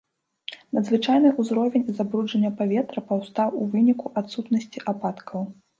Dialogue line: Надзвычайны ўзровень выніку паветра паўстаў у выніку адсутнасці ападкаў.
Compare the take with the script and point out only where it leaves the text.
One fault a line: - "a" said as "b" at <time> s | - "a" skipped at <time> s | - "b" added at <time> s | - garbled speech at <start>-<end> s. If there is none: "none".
- "выніку" said as "забруджання" at 2.0 s